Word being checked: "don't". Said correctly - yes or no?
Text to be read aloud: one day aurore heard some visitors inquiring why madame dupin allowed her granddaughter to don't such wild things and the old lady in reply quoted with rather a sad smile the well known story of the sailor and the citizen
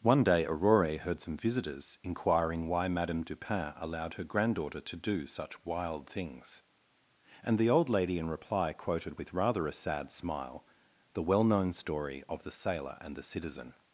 no